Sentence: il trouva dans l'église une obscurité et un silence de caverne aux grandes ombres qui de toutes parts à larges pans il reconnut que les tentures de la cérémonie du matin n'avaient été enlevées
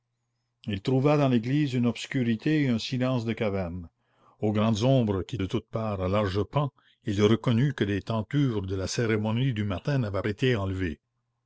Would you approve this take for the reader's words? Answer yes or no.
yes